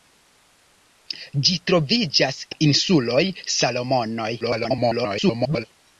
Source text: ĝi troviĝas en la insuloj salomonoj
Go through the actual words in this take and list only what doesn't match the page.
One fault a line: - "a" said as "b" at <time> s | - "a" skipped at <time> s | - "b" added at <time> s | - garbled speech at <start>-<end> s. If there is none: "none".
- "en" skipped at 2.4 s
- garbled speech at 4.4-5.7 s